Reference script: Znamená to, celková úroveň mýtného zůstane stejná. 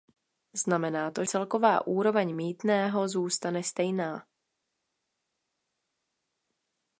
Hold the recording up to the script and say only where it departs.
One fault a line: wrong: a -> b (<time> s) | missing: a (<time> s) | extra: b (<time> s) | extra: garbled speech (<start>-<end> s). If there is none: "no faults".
no faults